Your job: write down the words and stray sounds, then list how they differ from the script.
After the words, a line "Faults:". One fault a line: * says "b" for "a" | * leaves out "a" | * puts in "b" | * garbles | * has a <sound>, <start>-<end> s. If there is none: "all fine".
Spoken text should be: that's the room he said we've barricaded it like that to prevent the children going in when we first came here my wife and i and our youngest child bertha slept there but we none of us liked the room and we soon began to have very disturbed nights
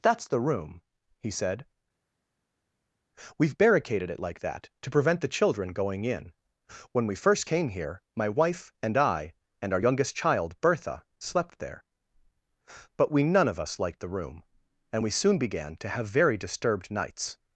that's the room he said we've barricaded it like that to prevent the children going in when we first came here my wife and i and our youngest child bertha slept there but we none of us liked the room and we soon began to have very disturbed nights
Faults:
all fine